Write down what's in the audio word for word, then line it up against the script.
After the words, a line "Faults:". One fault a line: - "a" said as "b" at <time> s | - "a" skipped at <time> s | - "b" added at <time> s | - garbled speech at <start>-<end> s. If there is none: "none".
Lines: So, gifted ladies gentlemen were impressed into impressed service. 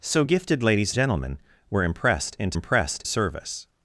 So, gifted ladies gentlemen were impressed into impressed service.
Faults:
none